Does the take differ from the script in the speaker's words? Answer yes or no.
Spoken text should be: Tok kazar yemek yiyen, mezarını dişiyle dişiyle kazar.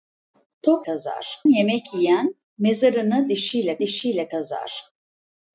no